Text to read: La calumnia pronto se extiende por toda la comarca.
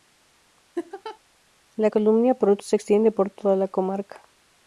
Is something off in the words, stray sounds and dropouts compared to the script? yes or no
yes